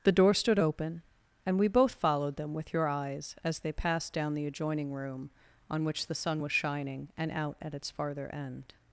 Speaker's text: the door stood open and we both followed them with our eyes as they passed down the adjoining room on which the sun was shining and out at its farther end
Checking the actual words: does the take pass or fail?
fail